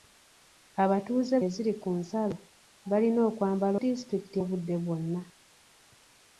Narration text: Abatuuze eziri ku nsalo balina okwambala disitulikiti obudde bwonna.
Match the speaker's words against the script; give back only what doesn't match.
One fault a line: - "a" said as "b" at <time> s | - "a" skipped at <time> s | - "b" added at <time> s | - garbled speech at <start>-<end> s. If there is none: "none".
none